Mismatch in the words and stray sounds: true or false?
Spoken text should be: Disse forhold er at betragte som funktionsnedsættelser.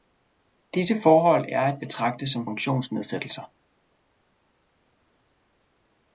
false